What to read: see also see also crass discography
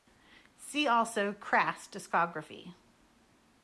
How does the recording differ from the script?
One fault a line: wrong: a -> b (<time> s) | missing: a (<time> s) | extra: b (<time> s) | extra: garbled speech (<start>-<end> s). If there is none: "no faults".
missing: see also (1.3 s)